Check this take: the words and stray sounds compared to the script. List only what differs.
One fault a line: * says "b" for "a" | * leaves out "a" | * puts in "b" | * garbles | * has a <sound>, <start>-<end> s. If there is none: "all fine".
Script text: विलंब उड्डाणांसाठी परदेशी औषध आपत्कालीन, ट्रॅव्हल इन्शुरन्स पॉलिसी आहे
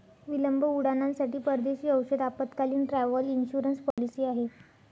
* has a dropout, 3.9-4.0 s